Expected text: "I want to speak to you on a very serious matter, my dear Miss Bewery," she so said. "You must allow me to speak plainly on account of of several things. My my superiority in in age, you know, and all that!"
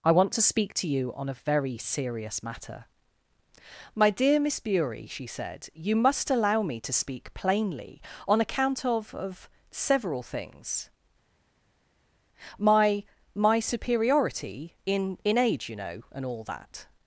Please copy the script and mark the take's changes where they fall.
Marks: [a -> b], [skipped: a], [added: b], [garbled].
"I want to speak to you on a very serious matter, my dear Miss Bewery," she [skipped: so] said. "You must allow me to speak plainly on account of of several things. My my superiority in in age, you know, and all that!"